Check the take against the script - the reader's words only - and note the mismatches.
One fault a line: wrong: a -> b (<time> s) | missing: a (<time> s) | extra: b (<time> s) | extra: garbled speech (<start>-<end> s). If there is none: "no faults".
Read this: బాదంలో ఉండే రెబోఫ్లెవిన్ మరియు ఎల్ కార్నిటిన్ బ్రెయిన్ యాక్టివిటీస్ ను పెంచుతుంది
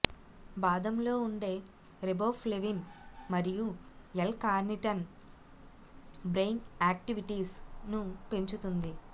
no faults